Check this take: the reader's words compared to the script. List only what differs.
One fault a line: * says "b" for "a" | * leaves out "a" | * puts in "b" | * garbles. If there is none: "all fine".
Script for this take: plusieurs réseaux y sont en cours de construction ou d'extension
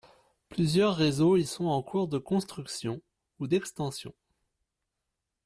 all fine